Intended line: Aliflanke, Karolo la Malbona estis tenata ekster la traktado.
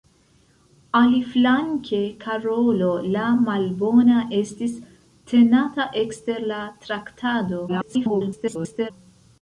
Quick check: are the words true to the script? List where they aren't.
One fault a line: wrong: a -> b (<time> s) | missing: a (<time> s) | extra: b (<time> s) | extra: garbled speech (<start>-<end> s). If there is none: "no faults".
extra: garbled speech (7.7-8.9 s)